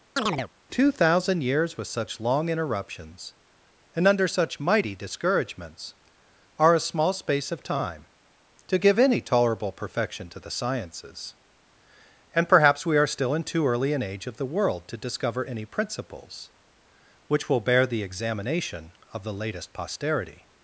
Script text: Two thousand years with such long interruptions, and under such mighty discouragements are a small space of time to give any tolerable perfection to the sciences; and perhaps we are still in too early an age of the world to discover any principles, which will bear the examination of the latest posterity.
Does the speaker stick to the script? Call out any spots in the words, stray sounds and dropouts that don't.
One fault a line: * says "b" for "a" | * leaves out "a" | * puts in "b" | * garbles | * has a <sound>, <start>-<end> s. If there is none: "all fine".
* has a chirp, 0.2-0.5 s